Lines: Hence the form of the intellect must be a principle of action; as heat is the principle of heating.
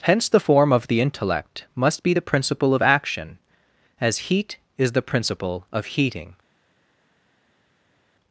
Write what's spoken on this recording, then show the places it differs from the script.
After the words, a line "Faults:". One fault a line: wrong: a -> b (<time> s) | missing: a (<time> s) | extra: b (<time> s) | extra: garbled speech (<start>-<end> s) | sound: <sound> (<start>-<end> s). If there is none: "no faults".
Hence the form of the intellect must be the principle of action; as heat is the principle of heating.
Faults:
wrong: a -> the (2.1 s)